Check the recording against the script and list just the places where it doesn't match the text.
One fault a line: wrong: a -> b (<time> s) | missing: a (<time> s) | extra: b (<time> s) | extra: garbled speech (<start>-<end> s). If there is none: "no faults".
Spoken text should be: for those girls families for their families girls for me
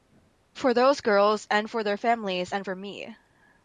wrong: families -> and (1.5 s)
wrong: girls -> and (2.5 s)